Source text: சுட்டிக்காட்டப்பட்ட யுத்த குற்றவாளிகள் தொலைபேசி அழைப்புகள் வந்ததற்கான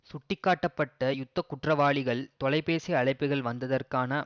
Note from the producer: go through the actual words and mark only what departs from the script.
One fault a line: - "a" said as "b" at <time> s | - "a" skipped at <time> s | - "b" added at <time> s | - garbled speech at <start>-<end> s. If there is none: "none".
none